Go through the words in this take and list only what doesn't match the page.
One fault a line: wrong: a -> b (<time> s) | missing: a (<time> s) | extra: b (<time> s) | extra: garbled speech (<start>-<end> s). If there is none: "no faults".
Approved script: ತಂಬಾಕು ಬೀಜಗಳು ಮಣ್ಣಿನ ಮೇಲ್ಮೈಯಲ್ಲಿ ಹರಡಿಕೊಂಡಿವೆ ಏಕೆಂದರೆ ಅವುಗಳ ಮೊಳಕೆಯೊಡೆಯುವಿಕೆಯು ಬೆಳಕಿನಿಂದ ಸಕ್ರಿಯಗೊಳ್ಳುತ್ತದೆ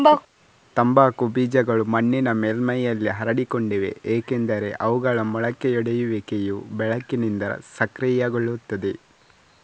no faults